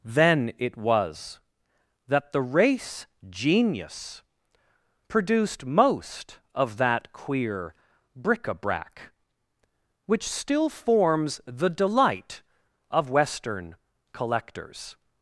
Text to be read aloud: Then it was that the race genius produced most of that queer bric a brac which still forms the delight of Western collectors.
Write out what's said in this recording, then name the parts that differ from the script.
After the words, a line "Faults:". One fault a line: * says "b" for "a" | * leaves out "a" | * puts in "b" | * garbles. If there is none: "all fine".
Then it was that the race genius produced most of that queer bric a brac which still forms the delight of Western collectors.
Faults:
all fine